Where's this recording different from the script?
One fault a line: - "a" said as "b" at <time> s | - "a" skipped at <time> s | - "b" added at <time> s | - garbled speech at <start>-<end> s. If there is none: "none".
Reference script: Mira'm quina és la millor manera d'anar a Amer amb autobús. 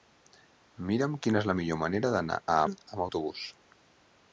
- "Amer" skipped at 2.6 s